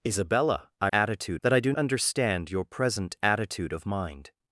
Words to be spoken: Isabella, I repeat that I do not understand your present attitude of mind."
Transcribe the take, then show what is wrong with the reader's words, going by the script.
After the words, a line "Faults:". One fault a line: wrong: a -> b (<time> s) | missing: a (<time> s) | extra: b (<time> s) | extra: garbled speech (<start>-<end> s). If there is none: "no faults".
Isabella, I attitude that I do understand your present attitude of mind."
Faults:
wrong: repeat -> attitude (0.9 s)
missing: not (1.7 s)